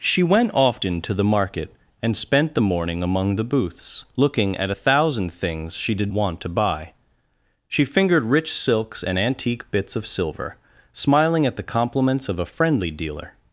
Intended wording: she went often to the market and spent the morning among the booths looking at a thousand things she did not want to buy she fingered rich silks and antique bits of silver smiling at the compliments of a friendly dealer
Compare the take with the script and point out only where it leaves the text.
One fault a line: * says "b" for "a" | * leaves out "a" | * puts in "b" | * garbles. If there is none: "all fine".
* leaves out "not"